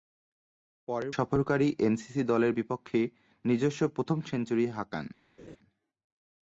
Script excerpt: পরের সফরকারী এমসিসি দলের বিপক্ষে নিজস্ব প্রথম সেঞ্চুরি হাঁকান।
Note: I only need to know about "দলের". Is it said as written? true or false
true